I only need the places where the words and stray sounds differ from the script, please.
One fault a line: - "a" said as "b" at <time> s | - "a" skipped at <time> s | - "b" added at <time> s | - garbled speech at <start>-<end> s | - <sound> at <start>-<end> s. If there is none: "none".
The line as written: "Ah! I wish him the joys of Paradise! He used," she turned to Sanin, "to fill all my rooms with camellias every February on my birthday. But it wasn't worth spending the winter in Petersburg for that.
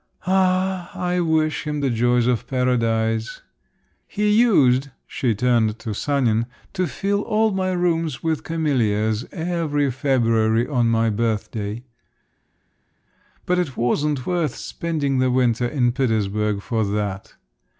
none